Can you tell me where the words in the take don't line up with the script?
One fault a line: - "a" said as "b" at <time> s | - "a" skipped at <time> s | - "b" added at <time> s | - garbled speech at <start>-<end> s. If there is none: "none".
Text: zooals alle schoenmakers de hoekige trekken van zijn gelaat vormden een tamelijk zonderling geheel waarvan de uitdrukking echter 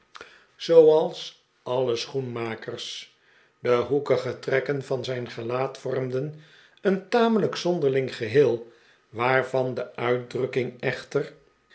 none